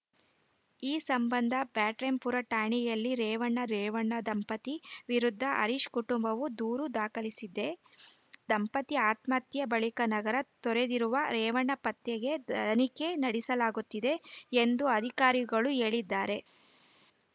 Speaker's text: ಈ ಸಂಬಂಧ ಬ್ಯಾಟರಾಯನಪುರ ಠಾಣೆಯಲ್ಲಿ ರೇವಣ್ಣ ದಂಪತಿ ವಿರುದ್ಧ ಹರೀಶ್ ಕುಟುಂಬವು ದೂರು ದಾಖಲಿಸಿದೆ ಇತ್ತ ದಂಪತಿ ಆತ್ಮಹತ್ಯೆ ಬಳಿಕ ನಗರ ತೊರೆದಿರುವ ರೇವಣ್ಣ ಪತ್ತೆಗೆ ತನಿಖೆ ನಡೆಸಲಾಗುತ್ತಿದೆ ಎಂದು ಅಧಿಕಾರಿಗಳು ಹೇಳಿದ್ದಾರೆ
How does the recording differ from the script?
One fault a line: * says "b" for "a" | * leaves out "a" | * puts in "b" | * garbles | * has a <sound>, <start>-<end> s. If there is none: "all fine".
* puts in "ರೇವಣ್ಣ"
* leaves out "ಇತ್ತ"